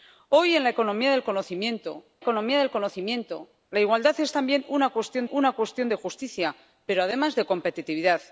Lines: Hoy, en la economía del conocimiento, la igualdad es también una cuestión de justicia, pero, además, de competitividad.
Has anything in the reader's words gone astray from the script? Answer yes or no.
yes